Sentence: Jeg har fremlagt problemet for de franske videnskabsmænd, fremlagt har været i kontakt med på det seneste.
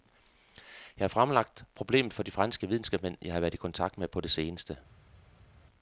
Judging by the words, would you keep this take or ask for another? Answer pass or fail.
fail